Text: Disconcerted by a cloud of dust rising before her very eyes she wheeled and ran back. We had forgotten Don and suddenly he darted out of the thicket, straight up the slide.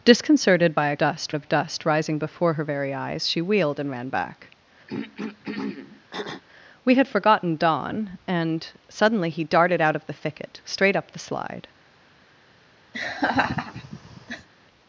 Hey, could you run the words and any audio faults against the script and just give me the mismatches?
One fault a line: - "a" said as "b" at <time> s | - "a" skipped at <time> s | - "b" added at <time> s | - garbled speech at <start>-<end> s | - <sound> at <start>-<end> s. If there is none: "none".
- "cloud" said as "dust" at 1.0 s
- throat clearing at 4.9-6.4 s
- laugh at 12.9-14.5 s